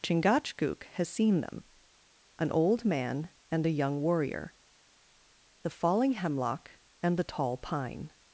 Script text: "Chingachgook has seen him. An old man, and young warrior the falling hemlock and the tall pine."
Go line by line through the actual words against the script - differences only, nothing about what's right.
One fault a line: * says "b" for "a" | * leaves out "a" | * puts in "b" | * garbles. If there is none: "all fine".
* says "them" for "him"
* puts in "a"